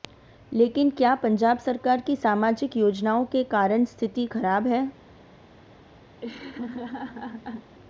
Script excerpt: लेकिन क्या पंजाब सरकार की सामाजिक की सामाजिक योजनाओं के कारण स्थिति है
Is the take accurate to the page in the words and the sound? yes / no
no